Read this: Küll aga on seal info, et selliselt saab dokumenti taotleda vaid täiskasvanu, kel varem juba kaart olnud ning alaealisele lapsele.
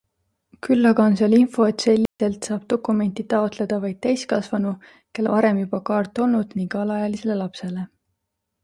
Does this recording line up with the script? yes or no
yes